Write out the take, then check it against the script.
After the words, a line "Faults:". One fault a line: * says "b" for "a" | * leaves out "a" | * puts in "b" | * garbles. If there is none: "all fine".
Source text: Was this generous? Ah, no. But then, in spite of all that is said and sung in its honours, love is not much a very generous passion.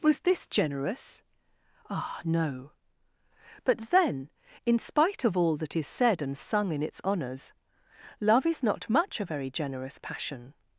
Was this generous? Ah, no. But then, in spite of all that is said and sung in its honours, love is not much a very generous passion.
Faults:
all fine